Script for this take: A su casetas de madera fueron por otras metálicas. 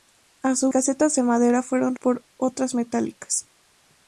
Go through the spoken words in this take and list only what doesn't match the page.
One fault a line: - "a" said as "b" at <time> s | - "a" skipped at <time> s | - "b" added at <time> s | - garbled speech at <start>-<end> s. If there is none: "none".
none